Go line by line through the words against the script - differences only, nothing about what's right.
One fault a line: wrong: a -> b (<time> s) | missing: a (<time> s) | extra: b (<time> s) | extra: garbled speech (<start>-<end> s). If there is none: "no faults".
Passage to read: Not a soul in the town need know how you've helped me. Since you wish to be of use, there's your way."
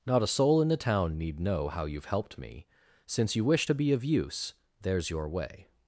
no faults